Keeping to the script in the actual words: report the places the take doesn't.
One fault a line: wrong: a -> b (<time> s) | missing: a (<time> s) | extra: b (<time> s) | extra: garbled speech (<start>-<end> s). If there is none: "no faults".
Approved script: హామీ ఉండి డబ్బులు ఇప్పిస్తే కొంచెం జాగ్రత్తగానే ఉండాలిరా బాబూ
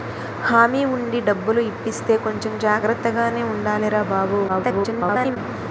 extra: garbled speech (4.5-5.4 s)